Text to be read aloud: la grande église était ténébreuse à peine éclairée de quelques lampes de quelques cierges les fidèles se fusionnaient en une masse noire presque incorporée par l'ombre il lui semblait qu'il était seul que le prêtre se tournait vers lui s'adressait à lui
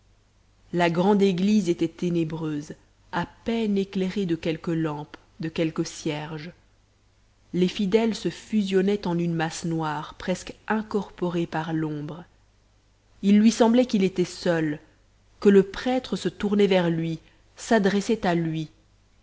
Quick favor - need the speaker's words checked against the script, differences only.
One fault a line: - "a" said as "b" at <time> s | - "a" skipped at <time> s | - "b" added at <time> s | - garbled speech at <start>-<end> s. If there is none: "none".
none